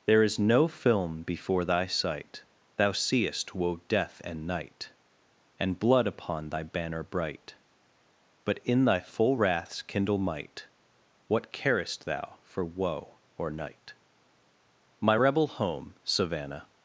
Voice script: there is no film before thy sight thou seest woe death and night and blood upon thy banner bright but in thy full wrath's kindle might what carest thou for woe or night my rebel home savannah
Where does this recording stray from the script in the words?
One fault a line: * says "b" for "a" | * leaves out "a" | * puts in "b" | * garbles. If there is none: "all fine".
all fine